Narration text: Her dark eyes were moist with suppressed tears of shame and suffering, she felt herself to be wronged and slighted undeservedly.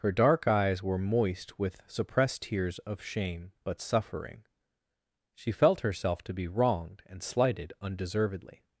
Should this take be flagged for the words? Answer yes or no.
yes